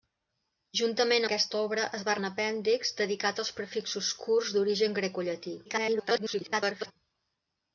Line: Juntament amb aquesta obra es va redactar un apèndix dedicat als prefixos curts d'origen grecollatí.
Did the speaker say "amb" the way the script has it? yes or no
no